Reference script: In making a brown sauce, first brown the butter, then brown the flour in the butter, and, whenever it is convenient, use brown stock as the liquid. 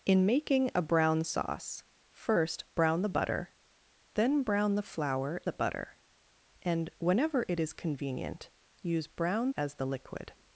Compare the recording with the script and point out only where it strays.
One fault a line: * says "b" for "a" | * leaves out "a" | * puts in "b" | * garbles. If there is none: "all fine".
* leaves out "in"
* leaves out "stock"